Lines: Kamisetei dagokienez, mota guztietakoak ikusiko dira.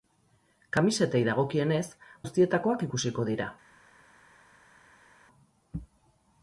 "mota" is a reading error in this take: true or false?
true